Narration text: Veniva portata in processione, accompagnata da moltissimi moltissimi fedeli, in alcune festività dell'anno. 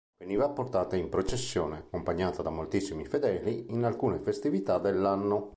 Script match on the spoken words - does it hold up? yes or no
no